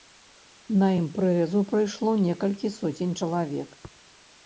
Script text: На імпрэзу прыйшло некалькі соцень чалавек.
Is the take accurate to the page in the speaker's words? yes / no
yes